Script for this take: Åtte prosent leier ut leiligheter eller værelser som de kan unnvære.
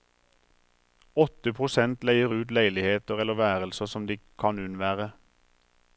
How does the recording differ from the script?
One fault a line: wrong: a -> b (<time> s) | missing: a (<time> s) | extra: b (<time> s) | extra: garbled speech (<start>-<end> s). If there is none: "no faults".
no faults